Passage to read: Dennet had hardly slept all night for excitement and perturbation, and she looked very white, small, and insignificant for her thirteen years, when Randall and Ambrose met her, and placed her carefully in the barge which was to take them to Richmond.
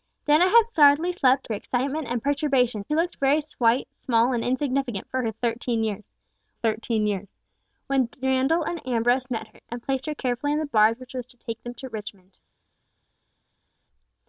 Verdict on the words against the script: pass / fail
fail